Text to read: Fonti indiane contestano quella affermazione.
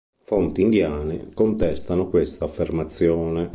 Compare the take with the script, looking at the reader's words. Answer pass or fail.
fail